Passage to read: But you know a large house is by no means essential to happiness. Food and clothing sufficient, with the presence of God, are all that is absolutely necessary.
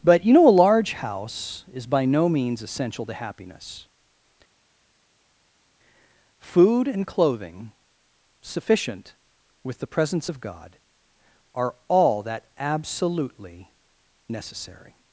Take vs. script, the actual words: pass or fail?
fail